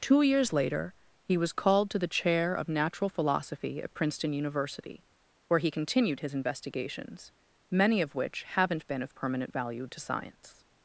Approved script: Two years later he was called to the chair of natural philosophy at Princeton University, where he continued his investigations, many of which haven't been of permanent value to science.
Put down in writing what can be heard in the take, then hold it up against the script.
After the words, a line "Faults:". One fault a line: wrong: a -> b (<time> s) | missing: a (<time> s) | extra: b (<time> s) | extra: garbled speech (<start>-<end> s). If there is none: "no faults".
Two years later he was called to the chair of natural philosophy at Princeton University, where he continued his investigations, many of which haven't been of permanent value to science.
Faults:
no faults